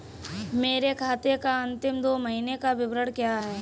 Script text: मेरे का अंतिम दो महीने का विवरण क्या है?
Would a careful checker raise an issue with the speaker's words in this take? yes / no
yes